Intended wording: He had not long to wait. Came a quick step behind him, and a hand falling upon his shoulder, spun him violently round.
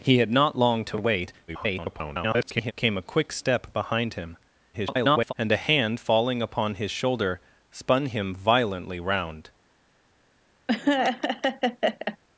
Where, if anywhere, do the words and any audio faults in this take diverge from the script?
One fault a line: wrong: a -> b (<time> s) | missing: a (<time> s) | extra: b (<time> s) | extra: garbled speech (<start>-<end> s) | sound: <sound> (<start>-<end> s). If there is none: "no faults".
extra: garbled speech (1.5-2.7 s)
extra: garbled speech (4.7-5.3 s)
sound: laugh (10.7-12.2 s)